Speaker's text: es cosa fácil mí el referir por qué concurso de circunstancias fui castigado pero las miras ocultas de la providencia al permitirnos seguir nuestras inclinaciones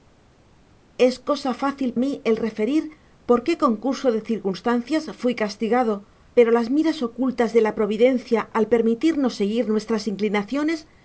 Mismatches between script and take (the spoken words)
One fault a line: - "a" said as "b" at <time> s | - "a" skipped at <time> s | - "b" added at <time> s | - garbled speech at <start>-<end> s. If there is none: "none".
none